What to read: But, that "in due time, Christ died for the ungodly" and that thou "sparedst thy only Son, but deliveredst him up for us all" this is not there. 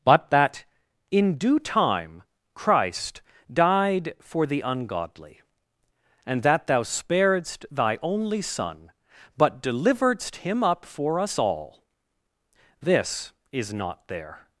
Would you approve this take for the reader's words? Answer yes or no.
yes